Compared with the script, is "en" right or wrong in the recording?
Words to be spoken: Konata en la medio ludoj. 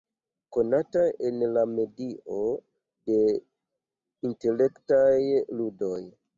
right